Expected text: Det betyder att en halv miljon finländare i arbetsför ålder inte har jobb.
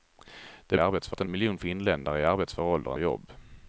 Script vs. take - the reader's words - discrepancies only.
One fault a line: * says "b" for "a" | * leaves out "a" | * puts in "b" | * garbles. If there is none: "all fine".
* says "arbetsför" for "betyder"
* leaves out "halv"
* leaves out "inte har"